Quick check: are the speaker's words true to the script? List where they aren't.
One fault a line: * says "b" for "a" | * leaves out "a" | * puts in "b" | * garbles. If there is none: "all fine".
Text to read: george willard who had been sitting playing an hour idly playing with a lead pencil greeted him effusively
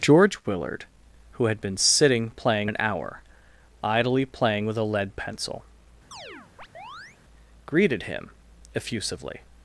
all fine